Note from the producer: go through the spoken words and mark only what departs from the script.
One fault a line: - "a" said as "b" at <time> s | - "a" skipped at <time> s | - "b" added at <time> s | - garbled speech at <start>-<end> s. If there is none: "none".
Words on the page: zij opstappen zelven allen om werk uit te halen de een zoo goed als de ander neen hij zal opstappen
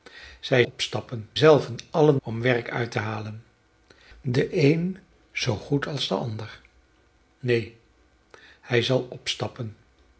none